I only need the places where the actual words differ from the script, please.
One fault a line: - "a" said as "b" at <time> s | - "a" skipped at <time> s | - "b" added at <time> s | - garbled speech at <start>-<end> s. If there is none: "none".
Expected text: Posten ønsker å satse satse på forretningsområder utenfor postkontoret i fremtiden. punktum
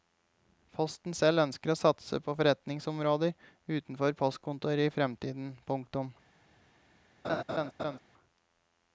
- "selv" added at 1.2 s
- "satse" skipped at 2.2 s